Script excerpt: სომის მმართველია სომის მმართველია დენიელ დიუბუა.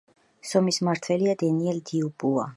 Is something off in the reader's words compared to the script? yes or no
yes